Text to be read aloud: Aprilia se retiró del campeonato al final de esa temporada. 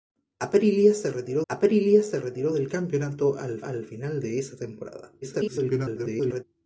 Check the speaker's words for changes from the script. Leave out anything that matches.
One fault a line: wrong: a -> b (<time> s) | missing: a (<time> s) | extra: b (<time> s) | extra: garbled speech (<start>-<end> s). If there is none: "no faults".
extra: aprilia se retiró (1.5 s)
extra: al (3.6 s)
extra: garbled speech (5.2-6.4 s)